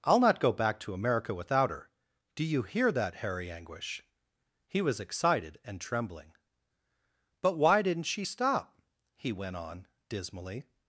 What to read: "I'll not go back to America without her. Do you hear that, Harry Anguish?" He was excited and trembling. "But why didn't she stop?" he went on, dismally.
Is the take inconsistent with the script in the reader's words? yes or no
no